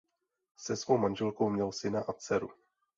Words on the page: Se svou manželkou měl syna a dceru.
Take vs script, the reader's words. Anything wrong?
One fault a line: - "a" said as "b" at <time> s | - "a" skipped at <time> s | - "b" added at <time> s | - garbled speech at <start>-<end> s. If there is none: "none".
none